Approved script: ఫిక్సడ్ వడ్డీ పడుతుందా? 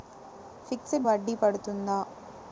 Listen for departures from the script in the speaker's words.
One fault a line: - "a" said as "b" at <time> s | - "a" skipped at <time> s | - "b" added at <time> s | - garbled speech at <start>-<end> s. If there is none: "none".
none